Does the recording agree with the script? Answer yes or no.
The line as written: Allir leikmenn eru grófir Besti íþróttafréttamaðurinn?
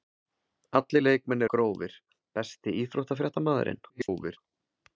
no